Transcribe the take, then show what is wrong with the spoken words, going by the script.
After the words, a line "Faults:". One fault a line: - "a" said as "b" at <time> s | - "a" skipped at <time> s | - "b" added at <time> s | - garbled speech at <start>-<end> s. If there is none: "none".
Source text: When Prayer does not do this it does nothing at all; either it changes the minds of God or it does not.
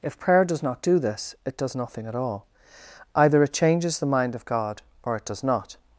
If Prayer does not do this it does nothing at all; either it changes the mind of God or it does not.
Faults:
- "When" said as "If" at 0.0 s
- "minds" said as "mind" at 4.1 s